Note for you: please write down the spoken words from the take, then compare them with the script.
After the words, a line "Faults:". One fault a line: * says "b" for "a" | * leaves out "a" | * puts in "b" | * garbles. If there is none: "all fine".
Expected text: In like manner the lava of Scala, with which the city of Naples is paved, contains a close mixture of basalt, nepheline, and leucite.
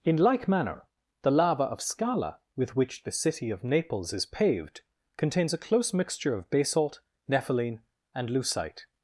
In like manner the lava of Scala, with which the city of Naples is paved, contains a close mixture of basalt, nepheline, and leucite.
Faults:
all fine